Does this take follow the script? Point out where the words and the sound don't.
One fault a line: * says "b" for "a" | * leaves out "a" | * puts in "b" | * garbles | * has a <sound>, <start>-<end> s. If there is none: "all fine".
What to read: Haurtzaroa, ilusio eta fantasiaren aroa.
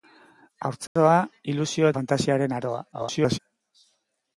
* has a dropout, 0.9-1.0 s
* leaves out "eta"
* garbles